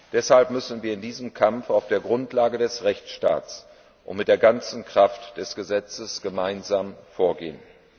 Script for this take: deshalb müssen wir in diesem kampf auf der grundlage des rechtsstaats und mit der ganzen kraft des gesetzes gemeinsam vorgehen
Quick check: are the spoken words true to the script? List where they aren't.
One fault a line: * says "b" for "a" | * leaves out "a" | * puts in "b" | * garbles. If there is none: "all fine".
all fine